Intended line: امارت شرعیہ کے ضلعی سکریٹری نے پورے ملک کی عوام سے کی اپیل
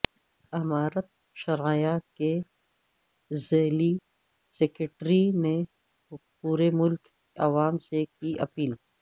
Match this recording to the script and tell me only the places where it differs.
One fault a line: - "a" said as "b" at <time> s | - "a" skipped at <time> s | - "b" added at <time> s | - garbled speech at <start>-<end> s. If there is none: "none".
- "کی" skipped at 7.0 s